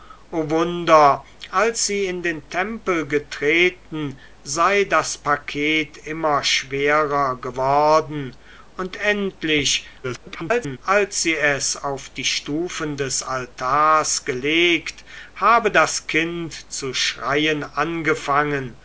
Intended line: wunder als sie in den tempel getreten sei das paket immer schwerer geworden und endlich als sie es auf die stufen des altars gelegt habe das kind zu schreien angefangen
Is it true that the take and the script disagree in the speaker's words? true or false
true